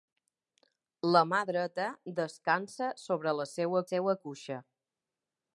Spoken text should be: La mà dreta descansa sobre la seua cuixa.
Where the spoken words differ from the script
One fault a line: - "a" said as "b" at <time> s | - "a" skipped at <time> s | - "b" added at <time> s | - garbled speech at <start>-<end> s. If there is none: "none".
- "seua" added at 3.9 s